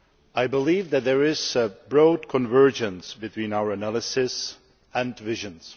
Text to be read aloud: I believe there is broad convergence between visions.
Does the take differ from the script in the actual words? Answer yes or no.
yes